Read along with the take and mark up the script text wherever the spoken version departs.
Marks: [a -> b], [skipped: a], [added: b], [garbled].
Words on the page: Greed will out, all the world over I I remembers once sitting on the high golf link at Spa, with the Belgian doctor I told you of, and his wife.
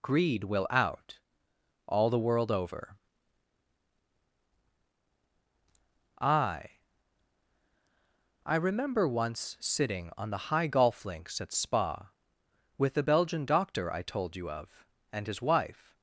Greed will out, all the world over I I [remembers -> remember] once sitting on the high golf [link -> links] at Spa, with the Belgian doctor I told you of, and his wife.